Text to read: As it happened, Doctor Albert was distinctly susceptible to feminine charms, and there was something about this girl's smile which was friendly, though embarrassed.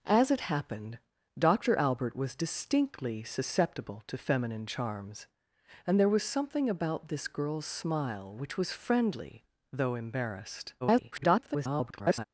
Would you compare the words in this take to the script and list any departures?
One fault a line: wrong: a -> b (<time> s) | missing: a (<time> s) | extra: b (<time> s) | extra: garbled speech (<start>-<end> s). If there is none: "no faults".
extra: garbled speech (10.8-12.2 s)